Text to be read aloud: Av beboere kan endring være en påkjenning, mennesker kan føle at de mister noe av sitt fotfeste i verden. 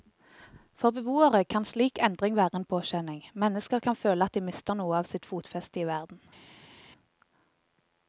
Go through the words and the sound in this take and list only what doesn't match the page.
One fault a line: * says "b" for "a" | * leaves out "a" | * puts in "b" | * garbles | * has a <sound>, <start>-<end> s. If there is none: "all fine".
* says "For" for "Av"
* puts in "slik"